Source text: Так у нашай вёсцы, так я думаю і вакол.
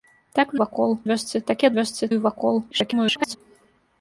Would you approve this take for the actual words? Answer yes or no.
no